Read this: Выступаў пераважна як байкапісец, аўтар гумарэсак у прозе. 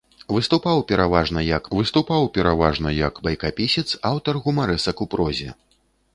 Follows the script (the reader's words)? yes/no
no